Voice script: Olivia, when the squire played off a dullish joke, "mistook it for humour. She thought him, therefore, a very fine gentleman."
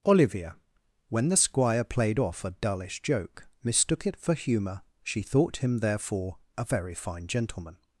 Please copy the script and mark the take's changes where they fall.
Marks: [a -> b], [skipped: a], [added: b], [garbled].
Olivia, when the squire played off a dullish joke, "mistook it for humour. She thought him, therefore, a very fine gentleman."